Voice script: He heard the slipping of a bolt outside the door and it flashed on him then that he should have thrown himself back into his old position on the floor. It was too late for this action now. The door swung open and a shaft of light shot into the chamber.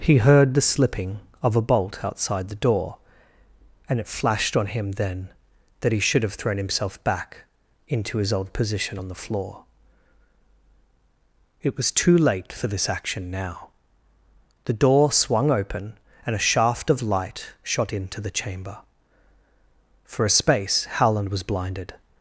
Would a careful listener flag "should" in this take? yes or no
no